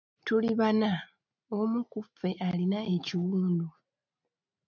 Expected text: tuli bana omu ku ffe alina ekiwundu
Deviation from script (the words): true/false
false